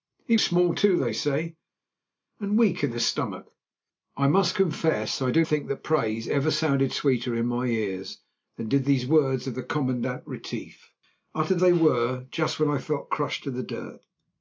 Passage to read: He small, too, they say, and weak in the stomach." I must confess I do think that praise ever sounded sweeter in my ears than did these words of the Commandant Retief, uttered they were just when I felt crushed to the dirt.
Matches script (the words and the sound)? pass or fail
pass